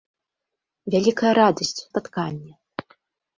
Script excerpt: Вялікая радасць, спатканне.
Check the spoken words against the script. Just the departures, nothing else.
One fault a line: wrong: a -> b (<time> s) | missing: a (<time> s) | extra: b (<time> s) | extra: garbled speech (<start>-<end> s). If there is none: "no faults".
no faults